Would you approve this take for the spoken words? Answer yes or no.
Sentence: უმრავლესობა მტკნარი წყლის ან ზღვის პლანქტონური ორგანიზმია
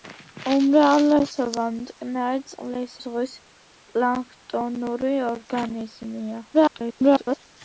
no